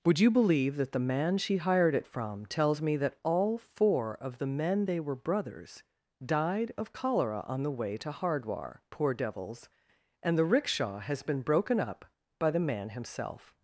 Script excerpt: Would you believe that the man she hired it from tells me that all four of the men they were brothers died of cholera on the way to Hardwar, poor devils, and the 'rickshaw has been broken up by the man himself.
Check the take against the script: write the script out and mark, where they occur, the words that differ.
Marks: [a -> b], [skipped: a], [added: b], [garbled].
Would you believe that the man she hired it from tells me that all four of the men they were brothers died of cholera on the way to Hardwar, poor devils, and the 'rickshaw has been broken up by the man himself.